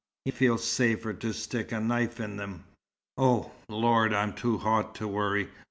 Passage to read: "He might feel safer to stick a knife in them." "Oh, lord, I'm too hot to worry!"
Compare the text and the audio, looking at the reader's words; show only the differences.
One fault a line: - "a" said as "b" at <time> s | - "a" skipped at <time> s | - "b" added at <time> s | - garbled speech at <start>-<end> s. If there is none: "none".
- "might" skipped at 0.3 s